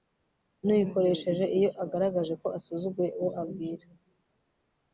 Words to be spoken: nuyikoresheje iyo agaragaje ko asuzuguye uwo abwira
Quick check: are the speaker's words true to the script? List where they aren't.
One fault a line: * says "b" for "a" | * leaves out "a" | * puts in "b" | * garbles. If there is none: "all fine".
all fine